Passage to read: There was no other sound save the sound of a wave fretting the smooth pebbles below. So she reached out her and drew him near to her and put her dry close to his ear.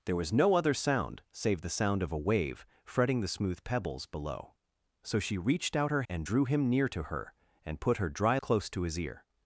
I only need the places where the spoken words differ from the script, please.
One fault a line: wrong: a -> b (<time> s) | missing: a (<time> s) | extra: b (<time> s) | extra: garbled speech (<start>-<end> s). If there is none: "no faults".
no faults